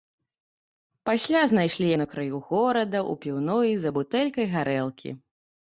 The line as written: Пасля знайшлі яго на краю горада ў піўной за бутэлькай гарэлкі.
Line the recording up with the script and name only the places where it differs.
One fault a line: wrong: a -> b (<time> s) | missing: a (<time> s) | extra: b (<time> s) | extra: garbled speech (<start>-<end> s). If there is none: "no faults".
missing: яго (1.9 s)